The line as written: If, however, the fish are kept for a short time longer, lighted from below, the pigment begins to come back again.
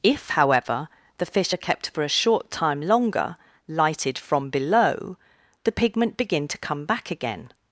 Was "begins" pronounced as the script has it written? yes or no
no